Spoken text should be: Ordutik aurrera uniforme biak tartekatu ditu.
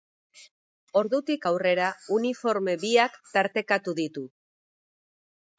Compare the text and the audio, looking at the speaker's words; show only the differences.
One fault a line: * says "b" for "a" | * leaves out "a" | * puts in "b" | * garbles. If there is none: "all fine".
all fine